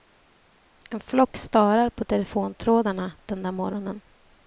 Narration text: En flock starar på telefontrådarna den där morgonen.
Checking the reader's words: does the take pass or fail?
pass